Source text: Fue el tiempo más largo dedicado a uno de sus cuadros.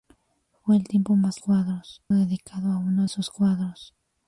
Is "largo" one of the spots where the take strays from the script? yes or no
yes